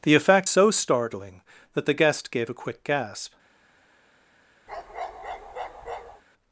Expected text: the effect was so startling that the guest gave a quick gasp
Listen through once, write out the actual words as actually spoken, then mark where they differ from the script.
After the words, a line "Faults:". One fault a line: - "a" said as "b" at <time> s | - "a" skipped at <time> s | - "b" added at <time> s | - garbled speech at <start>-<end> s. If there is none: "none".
the effect so startling that the guest gave a quick gasp
Faults:
- "was" skipped at 0.5 s